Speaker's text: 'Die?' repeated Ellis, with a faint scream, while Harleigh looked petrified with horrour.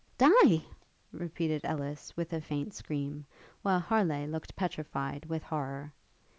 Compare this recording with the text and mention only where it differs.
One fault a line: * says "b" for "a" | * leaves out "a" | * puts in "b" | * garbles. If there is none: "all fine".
all fine